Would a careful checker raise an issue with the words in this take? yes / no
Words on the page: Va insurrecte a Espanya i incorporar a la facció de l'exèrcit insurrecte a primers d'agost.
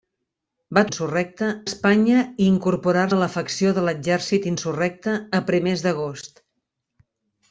no